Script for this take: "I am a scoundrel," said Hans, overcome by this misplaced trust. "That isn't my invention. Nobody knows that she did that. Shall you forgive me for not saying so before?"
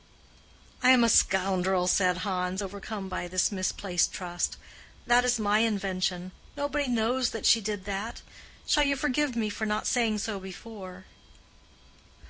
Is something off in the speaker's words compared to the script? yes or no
yes